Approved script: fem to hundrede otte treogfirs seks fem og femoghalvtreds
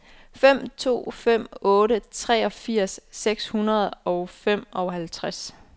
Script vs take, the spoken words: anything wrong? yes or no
yes